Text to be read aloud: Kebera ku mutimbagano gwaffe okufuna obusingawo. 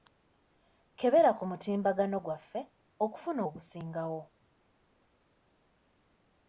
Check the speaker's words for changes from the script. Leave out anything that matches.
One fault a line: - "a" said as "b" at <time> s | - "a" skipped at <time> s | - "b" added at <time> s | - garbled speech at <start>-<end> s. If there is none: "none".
none